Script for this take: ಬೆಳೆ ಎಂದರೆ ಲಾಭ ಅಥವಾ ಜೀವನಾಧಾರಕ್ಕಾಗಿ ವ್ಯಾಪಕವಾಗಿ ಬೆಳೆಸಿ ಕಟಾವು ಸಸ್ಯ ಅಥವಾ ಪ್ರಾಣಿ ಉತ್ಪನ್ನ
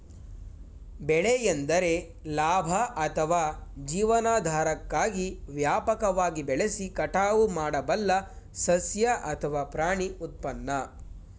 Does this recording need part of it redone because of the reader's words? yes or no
yes